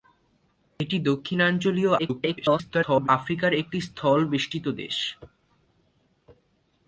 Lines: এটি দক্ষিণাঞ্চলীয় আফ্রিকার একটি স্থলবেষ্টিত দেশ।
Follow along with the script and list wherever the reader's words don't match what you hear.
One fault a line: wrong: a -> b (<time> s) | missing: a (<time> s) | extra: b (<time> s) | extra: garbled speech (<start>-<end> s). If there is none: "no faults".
extra: garbled speech (2.0-3.1 s)